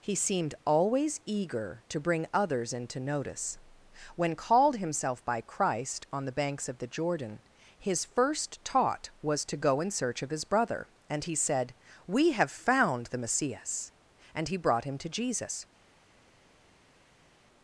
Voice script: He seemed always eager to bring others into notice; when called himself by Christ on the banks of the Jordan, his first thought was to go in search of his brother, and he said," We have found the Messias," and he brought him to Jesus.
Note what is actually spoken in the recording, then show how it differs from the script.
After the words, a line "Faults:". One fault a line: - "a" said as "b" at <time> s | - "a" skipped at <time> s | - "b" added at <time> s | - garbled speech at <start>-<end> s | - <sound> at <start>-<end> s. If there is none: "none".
He seemed always eager to bring others into notice; when called himself by Christ on the banks of the Jordan, his first taught was to go in search of his brother, and he said," We have found the Messias," and he brought him to Jesus.
Faults:
- "thought" said as "taught" at 8.6 s